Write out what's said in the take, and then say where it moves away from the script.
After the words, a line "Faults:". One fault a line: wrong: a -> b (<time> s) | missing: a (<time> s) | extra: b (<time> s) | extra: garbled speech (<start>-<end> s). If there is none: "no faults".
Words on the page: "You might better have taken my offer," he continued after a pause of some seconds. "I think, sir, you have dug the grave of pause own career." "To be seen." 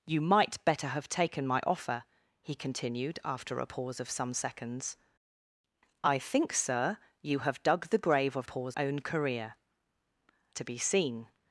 "You might better have taken my offer," he continued after a pause of some seconds. "I think, sir, you have dug the grave of pause own career." "To be seen."
Faults:
no faults